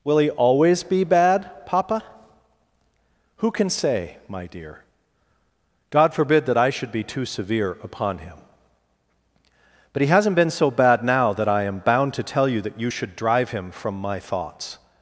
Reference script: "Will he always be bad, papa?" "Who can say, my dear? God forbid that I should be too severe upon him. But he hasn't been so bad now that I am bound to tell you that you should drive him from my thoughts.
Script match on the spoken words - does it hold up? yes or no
yes